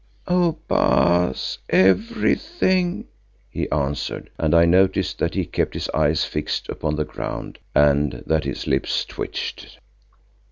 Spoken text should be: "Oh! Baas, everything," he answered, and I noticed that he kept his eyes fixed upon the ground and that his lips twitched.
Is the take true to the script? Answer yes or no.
yes